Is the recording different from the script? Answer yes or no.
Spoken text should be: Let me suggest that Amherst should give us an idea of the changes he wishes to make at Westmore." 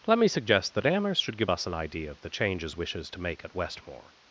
yes